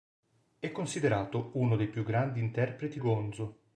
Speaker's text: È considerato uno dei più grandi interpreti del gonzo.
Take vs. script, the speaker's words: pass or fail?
fail